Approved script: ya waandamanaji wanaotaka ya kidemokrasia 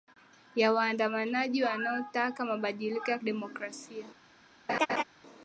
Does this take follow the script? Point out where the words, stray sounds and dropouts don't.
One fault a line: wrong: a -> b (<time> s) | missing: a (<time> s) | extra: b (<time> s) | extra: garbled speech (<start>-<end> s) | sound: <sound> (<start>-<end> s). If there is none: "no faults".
extra: mabadiliko (2.5 s)
sound: laugh (4.7-5.0 s)